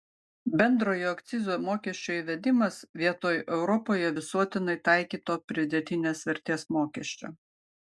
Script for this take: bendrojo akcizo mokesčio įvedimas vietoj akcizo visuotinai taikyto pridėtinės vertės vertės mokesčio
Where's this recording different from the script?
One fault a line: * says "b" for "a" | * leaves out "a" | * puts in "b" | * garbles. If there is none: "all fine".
* says "europoje" for "akcizo"
* leaves out "vertės"